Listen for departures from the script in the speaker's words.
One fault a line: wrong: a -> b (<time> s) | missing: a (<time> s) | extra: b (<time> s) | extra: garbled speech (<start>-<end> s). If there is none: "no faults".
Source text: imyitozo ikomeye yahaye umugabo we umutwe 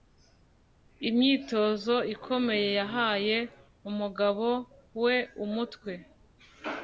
no faults